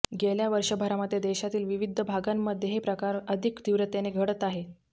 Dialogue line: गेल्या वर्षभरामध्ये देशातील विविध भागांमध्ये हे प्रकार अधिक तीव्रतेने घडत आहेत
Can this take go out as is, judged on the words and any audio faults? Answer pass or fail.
pass